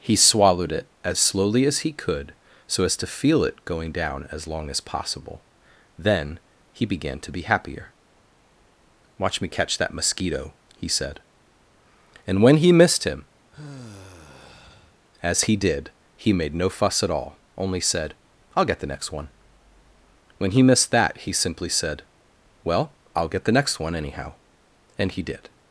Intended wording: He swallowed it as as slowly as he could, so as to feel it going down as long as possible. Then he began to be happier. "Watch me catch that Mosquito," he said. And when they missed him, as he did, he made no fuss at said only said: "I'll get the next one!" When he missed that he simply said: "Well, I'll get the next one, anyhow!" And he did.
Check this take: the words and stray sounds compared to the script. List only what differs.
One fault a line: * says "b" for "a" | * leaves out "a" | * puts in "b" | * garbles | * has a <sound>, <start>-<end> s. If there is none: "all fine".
* leaves out "as"
* says "he" for "they"
* has a sigh, 13.5-15.0 s
* says "all" for "said"